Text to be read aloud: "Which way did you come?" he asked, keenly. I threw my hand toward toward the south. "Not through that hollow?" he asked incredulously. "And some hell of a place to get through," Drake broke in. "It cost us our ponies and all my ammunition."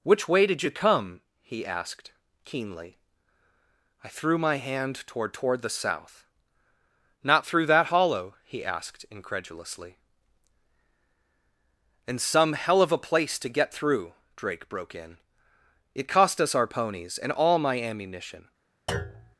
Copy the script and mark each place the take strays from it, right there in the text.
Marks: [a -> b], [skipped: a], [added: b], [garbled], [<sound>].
"Which way did you come?" he asked, keenly. I threw my hand toward toward the south. "Not through that hollow?" he asked incredulously. "And some hell of a place to get through," Drake broke in. "It cost us our ponies and all my ammunition." [thud]